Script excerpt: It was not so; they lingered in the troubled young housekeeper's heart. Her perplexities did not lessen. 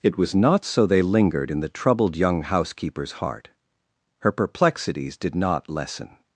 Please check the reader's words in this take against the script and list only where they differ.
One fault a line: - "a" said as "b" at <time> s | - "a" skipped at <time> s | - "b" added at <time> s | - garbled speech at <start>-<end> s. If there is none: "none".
none